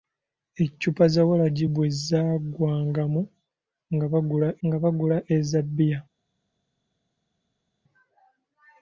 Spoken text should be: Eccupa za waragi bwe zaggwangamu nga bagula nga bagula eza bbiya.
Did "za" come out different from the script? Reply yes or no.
no